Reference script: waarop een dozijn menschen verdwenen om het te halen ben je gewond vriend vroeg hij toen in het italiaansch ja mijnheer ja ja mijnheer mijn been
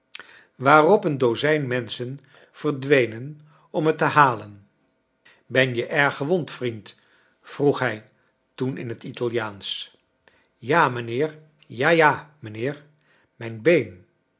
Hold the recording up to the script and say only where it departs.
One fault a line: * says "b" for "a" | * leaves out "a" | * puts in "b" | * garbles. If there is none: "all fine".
* puts in "erg"